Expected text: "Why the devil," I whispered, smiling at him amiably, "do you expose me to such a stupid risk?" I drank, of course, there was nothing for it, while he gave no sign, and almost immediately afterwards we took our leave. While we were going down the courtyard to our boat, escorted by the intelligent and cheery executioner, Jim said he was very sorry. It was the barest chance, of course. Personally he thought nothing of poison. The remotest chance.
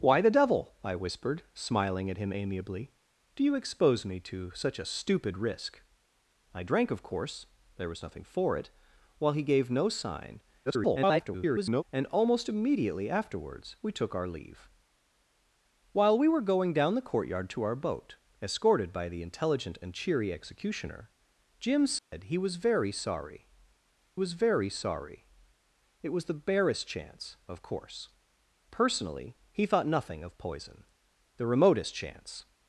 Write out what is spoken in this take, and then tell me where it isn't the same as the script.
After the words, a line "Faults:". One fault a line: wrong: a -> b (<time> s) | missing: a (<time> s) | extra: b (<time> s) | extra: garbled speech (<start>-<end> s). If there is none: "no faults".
"Why the devil," I whispered, smiling at him amiably, "do you expose me to such a stupid risk?" I drank, of course, there was nothing for it, while he gave no sign, [garbled] and almost immediately afterwards we took our leave. While we were going down the courtyard to our boat, escorted by the intelligent and cheery executioner, Jim said he was very sorry was very sorry. It was the barest chance, of course. Personally he thought nothing of poison. The remotest chance.
Faults:
extra: garbled speech (10.7-11.8 s)
extra: was very sorry (24.1 s)